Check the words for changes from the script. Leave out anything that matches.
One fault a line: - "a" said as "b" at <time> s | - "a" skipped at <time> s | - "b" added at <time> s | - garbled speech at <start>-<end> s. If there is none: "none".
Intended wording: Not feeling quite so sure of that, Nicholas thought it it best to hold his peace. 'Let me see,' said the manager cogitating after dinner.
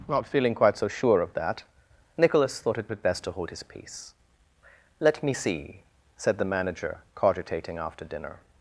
none